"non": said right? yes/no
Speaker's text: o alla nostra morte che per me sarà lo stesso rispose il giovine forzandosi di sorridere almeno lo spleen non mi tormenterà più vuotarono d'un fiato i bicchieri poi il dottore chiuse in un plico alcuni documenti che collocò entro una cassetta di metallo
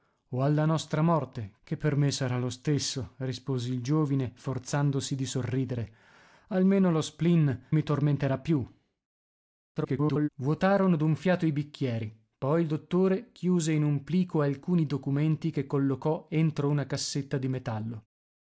no